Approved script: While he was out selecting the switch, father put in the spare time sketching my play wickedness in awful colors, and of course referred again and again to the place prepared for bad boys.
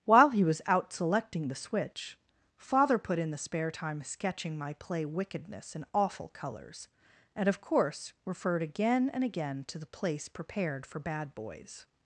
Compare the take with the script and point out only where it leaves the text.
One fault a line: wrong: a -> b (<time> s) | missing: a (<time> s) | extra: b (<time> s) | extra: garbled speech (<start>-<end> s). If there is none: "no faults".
no faults